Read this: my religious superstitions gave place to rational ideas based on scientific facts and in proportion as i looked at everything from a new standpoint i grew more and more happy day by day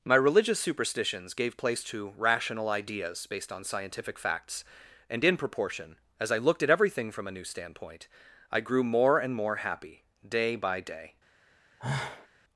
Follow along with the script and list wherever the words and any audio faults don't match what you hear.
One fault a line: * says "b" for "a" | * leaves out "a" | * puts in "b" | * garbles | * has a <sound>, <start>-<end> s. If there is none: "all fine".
* has a sigh, 11.8-12.3 s